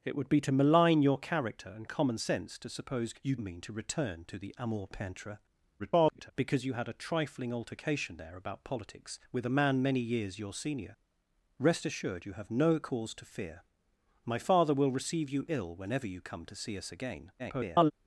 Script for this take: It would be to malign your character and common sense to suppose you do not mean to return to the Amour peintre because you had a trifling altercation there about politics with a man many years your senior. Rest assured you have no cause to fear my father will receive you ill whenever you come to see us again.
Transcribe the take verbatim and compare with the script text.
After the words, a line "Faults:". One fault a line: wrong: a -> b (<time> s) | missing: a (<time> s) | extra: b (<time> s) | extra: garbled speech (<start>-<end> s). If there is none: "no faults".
It would be to malign your character and common sense to suppose you mean to return to the Amour peintre [garbled] because you had a trifling altercation there about politics with a man many years your senior. Rest assured you have no cause to fear my father will receive you ill whenever you come to see us again. [garbled]
Faults:
missing: do not (3.4 s)
extra: garbled speech (5.8-6.3 s)
extra: garbled speech (17.4-17.9 s)